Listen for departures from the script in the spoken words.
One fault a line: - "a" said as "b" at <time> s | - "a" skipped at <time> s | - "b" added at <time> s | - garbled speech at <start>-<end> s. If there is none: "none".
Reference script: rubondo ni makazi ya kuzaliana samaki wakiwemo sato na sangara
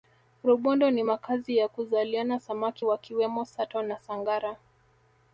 none